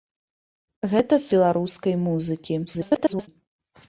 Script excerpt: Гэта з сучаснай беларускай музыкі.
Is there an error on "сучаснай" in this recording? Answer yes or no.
yes